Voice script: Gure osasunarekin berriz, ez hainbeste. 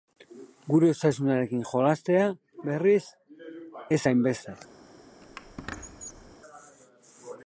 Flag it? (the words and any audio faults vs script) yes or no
yes